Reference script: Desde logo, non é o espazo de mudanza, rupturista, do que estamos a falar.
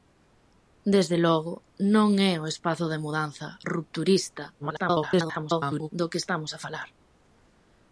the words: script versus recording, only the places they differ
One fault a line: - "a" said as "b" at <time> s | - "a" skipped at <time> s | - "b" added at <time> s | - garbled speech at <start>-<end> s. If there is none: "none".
- garbled speech at 4.6-5.9 s